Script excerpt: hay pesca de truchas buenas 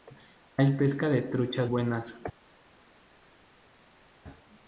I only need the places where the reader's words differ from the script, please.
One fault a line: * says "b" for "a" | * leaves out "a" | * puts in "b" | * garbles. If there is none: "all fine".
all fine